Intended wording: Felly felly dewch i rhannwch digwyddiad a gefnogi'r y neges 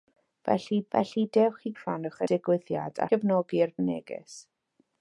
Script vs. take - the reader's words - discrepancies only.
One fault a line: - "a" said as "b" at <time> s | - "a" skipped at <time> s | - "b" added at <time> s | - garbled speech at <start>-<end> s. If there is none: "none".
none